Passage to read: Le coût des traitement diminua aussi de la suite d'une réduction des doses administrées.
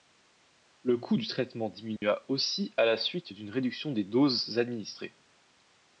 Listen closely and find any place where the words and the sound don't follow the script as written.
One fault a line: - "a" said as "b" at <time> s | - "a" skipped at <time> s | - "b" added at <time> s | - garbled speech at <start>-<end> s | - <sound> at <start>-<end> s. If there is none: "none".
- "des" said as "du" at 1.1 s
- dropout at 2.0-2.0 s
- "de" said as "à" at 2.8 s